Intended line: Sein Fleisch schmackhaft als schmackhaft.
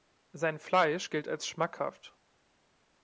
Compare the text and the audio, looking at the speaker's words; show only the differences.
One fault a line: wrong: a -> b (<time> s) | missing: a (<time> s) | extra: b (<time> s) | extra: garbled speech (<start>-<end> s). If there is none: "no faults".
wrong: schmackhaft -> gilt (1.1 s)